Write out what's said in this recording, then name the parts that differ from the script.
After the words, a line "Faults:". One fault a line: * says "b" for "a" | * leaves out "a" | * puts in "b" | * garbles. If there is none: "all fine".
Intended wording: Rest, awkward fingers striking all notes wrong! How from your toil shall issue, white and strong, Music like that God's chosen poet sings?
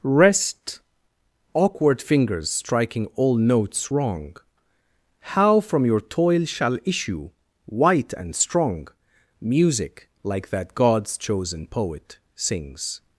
Rest, awkward fingers striking all notes wrong! How from your toil shall issue, white and strong, Music like that God's chosen poet sings?
Faults:
all fine